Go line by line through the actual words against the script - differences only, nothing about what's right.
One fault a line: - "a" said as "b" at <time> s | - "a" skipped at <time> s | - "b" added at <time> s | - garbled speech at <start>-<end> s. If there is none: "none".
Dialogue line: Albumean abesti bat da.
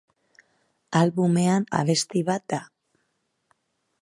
none